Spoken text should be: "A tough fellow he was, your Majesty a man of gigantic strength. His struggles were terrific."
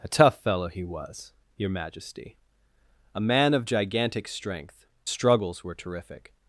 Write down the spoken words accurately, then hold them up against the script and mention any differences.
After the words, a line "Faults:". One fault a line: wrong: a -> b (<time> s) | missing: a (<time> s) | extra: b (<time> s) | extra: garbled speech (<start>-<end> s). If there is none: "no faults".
"A tough fellow he was, your Majesty a man of gigantic strength. Struggles were terrific."
Faults:
missing: His (4.8 s)